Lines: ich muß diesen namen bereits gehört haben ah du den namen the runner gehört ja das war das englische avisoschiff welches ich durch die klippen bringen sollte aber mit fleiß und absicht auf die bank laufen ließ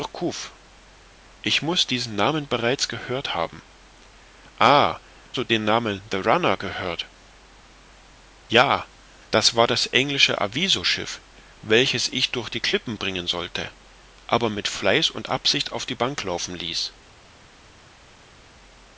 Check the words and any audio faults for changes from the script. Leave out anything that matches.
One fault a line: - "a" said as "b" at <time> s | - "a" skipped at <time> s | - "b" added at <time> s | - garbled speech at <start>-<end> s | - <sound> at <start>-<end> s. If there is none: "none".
none